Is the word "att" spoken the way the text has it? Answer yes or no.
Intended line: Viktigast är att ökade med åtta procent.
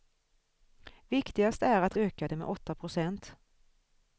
yes